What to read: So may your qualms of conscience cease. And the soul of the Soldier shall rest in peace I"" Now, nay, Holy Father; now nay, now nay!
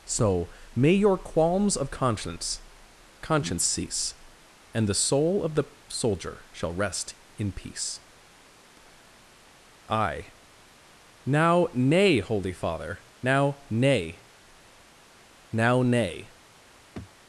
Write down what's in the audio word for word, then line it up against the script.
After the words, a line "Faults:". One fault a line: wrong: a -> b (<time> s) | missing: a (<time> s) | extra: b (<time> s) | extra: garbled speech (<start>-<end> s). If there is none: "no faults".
So may your qualms of conscience conscience cease. And the soul of the Soldier shall rest in peace I"" Now, nay, Holy Father; now nay, now nay!
Faults:
extra: conscience (3.2 s)